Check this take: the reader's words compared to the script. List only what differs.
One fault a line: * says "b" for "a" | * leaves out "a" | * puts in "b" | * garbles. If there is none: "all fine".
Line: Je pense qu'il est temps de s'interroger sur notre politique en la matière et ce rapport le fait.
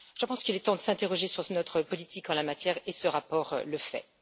all fine